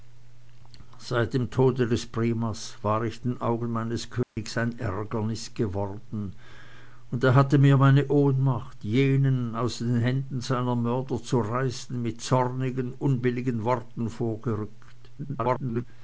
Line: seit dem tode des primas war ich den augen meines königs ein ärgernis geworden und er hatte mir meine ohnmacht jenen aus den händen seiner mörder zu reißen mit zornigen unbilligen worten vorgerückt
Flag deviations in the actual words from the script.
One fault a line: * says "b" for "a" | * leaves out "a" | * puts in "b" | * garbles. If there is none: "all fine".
* garbles